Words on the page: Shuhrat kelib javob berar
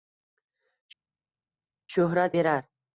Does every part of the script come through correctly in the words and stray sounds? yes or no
no